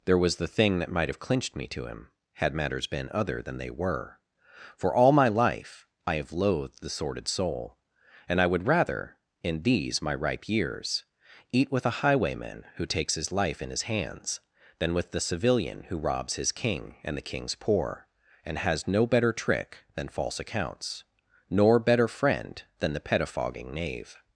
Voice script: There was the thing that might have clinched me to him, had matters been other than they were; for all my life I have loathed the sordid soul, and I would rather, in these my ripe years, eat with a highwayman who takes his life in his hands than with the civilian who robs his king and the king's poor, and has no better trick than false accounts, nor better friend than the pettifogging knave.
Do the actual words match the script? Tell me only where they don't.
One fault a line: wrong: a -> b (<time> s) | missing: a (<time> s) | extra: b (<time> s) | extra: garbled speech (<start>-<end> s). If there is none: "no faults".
no faults